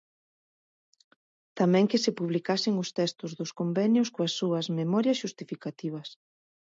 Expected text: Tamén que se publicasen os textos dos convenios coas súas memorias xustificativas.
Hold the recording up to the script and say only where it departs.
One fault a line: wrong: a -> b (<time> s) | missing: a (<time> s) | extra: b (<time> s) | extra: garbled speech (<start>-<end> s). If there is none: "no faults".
no faults